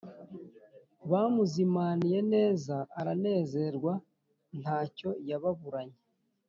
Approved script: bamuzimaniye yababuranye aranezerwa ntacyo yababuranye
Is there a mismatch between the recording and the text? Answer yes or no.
yes